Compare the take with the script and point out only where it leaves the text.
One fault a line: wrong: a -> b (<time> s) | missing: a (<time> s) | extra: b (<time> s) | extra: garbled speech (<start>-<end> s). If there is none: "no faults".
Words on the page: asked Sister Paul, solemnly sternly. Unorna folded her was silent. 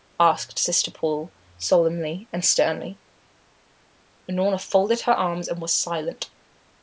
extra: and (2.3 s)
extra: arms and (5.1 s)